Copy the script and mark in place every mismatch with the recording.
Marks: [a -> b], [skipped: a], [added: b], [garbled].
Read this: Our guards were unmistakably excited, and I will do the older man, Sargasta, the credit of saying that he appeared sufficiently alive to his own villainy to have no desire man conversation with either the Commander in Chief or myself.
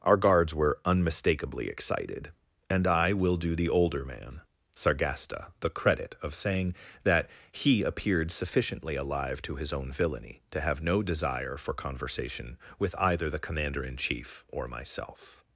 Our guards were unmistakably excited, and I will do the older man, Sargasta, the credit of saying that he appeared sufficiently alive to his own villainy to have no desire [man -> for] conversation with either the Commander in Chief or myself.